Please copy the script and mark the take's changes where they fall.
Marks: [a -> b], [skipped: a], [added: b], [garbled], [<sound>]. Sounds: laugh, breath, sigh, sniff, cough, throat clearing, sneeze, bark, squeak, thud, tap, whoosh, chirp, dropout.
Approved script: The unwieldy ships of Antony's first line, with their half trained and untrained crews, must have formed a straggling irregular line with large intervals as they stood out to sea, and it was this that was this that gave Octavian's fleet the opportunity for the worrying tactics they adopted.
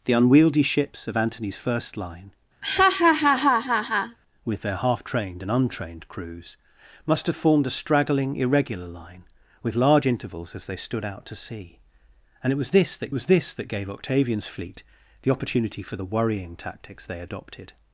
The unwieldy ships of Antony's first line, [laugh] with their half trained and untrained crews, must have formed a straggling irregular line with large intervals as they stood out to sea, and it was this that was this that gave Octavian's fleet the opportunity for the worrying tactics they adopted.